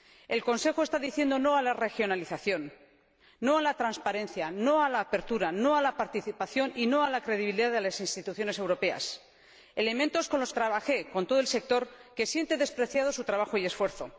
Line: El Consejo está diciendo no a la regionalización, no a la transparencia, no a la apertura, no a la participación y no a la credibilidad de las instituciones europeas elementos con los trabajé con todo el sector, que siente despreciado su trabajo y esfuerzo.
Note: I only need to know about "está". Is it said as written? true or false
true